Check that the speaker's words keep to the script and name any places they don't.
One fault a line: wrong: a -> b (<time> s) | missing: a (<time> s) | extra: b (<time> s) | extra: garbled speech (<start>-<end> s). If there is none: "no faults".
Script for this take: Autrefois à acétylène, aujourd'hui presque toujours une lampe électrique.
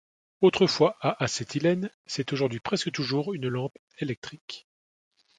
extra: c'est (2.0 s)